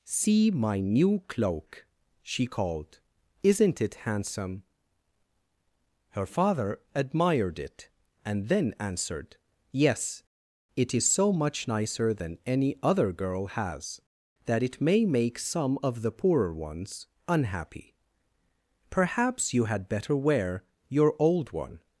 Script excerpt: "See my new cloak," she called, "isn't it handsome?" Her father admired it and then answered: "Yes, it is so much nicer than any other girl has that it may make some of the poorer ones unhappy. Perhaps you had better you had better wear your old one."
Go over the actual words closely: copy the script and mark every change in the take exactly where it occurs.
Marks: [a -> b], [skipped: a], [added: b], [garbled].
"See my new cloak," she called, "isn't it handsome?" Her father admired it and then answered: "Yes, it is so much nicer than any other girl has that it may make some of the poorer ones unhappy. Perhaps you had better [skipped: you had better] wear your old one."